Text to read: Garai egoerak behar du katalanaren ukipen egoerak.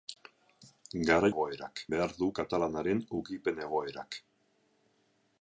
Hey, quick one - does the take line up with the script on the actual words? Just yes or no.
yes